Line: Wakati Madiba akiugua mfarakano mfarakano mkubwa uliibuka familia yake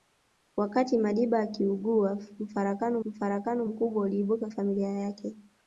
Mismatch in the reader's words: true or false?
false